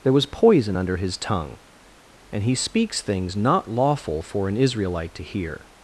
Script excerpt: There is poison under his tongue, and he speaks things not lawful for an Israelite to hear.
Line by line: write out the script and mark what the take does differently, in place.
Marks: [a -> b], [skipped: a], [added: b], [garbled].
There [is -> was] poison under his tongue, and he speaks things not lawful for an Israelite to hear.